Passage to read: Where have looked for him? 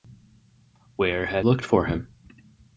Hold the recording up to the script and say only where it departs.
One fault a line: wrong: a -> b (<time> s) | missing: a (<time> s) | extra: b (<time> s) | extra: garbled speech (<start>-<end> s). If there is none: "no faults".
no faults